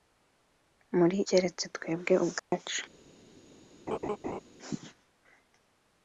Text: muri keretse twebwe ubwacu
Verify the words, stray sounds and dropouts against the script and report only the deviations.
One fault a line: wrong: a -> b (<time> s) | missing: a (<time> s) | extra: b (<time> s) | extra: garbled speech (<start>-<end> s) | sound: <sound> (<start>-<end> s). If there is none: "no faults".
sound: dropout (2.4-2.5 s)
sound: laugh (3.9-4.4 s)